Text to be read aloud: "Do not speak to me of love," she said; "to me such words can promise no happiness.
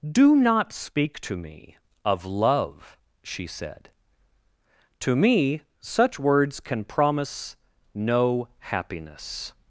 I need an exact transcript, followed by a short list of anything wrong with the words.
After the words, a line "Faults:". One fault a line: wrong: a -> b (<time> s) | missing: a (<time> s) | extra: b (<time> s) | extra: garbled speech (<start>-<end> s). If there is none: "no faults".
"Do not speak to me of love," she said; "to me such words can promise no happiness.
Faults:
no faults